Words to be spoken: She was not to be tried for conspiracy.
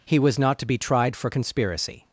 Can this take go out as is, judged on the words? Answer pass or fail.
fail